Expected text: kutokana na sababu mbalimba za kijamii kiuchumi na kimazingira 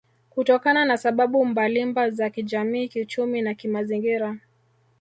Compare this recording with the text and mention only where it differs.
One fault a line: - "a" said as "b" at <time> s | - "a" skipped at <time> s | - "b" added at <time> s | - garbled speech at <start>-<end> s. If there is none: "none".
none